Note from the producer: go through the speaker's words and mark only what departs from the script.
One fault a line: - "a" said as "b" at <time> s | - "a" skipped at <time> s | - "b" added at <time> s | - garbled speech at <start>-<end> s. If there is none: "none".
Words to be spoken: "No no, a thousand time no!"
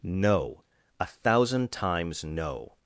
- "no" skipped at 0.6 s
- "time" said as "times" at 1.7 s